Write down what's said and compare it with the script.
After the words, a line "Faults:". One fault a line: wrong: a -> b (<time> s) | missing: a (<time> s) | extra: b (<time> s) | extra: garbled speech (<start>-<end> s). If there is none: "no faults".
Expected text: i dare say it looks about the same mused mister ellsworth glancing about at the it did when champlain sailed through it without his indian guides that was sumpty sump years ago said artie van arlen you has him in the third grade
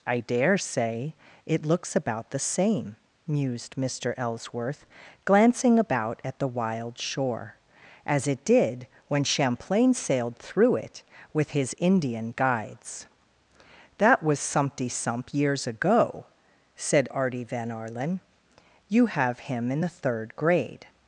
i dare say it looks about the same mused mister ellsworth glancing about at the wild shore as it did when champlain sailed through it with his indian guides that was sumpty sump years ago said artie van arlen you have him in the third grade
Faults:
extra: wild shore as (6.5 s)
wrong: without -> with (11.3 s)
wrong: has -> have (19.1 s)